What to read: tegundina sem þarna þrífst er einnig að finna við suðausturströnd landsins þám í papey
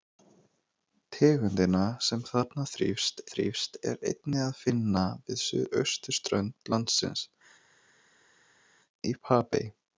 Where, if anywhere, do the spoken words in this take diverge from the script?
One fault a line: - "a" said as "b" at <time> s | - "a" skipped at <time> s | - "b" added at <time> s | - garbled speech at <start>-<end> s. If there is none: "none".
- "þrífst" added at 3.3 s
- "þám" skipped at 7.3 s